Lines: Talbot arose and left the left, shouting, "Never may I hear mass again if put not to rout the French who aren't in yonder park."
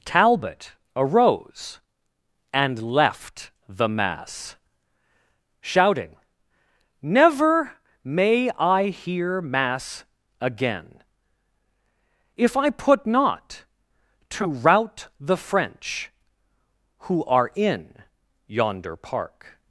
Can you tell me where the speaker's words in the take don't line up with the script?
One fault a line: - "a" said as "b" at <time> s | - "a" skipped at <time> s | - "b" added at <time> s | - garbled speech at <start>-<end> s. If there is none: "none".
- "left" said as "mass" at 3.9 s
- "I" added at 12.6 s
- "aren't" said as "are" at 17.2 s